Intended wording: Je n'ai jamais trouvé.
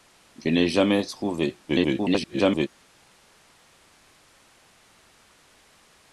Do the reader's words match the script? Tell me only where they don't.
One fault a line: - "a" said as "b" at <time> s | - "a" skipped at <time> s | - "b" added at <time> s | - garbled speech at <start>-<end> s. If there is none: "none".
- garbled speech at 1.7-2.7 s